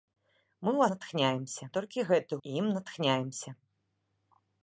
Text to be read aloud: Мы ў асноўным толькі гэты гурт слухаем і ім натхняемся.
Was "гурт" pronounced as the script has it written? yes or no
no